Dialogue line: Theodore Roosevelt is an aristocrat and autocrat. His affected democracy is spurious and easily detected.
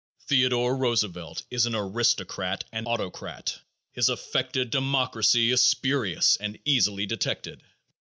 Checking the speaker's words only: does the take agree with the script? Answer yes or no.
yes